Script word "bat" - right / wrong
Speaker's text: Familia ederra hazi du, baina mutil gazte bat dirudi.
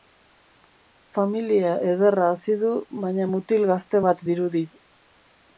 right